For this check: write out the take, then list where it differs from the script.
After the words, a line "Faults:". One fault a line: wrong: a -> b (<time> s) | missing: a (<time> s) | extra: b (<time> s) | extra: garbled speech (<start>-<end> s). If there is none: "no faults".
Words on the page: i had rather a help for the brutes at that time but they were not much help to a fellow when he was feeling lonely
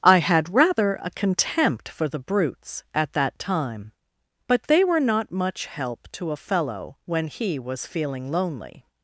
i had rather a contempt for the brutes at that time but they were not much help to a fellow when he was feeling lonely
Faults:
wrong: help -> contempt (1.1 s)